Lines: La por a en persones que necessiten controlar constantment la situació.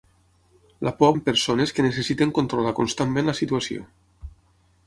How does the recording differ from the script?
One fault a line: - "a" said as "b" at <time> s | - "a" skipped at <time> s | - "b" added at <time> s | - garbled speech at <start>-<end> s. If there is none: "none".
none